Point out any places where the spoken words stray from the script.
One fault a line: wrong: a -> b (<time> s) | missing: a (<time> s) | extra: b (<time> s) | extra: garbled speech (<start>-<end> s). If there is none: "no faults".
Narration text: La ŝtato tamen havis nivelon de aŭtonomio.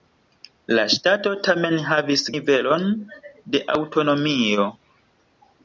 no faults